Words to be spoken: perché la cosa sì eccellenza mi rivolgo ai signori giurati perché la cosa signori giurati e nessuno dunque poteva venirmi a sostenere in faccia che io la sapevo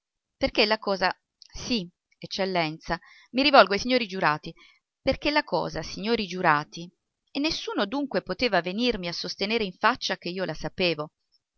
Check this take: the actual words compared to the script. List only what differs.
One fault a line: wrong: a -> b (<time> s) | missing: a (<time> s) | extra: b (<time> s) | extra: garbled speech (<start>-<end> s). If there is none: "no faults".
no faults